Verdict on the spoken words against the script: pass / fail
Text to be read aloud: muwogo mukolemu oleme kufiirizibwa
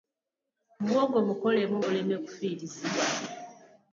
pass